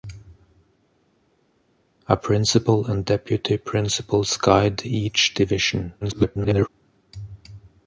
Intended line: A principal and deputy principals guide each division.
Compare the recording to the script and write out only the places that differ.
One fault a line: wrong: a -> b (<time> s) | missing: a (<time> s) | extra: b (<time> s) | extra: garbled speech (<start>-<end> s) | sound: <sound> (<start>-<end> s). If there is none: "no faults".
extra: garbled speech (6.0-6.7 s)